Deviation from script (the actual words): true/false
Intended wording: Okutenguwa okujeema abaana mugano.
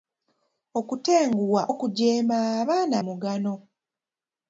false